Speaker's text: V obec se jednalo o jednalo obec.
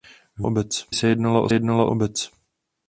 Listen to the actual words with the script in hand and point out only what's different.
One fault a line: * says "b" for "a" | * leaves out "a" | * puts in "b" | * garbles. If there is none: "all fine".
all fine